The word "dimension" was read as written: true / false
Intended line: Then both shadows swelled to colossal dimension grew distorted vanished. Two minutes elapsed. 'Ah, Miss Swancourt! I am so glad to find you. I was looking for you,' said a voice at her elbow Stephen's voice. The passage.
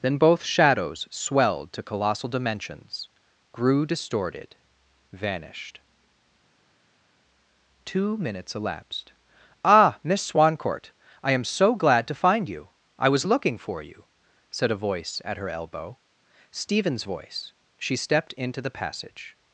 false